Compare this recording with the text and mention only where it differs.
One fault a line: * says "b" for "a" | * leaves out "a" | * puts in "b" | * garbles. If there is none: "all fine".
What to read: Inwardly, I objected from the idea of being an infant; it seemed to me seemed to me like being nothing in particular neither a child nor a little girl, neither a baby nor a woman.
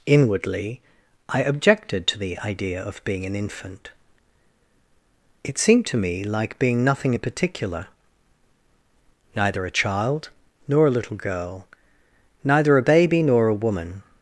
* says "to" for "from"
* leaves out "seemed to me"